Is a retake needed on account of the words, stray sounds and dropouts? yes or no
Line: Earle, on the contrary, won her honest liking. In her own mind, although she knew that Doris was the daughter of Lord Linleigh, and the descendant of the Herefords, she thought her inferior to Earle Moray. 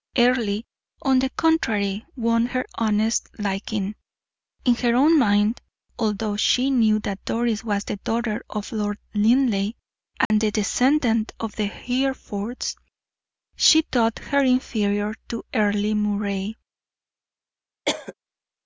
yes